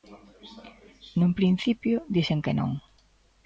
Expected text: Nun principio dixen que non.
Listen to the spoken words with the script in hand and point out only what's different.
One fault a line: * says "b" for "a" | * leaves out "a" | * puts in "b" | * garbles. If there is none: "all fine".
all fine